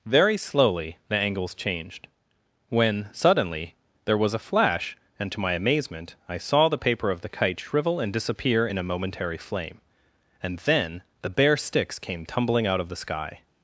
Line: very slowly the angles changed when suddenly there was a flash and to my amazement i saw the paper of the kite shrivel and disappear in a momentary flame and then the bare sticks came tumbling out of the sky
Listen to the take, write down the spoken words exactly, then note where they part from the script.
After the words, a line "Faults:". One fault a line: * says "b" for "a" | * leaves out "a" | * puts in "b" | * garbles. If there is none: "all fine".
very slowly the angles changed when suddenly there was a flash and to my amazement i saw the paper of the kite shrivel and disappear in a momentary flame and then the bare sticks came tumbling out of the sky
Faults:
all fine